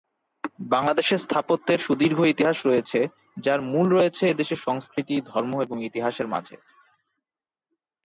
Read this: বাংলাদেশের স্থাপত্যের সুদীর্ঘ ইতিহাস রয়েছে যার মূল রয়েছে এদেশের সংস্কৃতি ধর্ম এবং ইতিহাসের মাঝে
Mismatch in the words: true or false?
false